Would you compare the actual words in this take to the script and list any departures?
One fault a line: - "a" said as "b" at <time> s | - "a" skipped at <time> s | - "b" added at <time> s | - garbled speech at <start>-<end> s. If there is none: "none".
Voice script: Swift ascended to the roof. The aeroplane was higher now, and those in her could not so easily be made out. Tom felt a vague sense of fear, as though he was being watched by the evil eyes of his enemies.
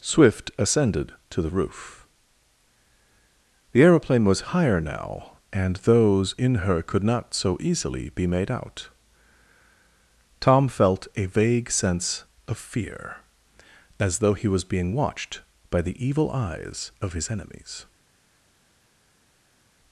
none